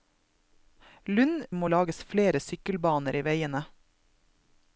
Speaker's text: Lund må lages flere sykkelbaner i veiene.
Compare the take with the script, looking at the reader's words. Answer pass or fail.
pass